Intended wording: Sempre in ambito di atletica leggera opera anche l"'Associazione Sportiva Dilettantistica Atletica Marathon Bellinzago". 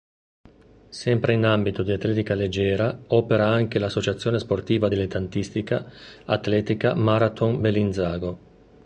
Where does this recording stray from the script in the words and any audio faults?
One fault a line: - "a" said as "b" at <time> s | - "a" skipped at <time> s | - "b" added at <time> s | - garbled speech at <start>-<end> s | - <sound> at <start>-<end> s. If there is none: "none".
none